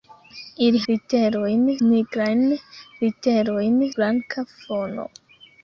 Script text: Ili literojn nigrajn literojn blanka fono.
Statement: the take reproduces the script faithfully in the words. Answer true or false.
true